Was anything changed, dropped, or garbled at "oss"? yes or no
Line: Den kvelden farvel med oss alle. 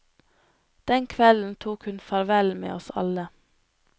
no